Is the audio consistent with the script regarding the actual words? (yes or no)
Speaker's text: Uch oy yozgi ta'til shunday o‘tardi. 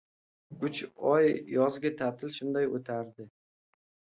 yes